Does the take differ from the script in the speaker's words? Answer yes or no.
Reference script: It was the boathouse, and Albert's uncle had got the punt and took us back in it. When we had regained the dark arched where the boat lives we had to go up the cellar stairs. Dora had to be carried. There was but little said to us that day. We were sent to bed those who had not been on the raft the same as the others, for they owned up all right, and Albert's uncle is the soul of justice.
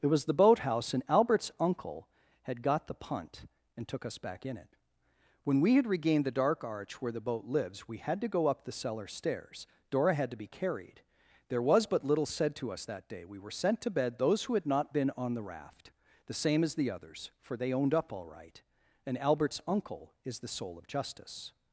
yes